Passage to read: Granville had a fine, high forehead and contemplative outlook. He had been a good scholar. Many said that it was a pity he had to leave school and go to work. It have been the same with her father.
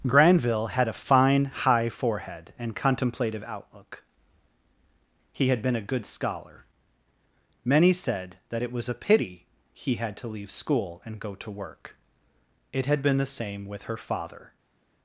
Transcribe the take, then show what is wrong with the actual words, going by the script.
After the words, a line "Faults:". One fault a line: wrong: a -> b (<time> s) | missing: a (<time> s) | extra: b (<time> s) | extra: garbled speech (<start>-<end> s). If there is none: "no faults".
Granville had a fine, high forehead and contemplative outlook. He had been a good scholar. Many said that it was a pity he had to leave school and go to work. It had been the same with her father.
Faults:
wrong: have -> had (12.9 s)